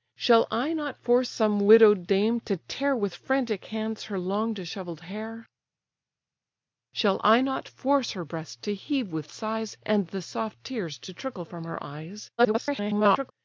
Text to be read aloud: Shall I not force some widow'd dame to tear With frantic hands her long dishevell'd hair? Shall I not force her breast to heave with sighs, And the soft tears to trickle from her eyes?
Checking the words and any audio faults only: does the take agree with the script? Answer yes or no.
no